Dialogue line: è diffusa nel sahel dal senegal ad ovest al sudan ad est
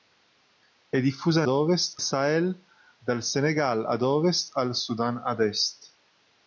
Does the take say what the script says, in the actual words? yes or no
no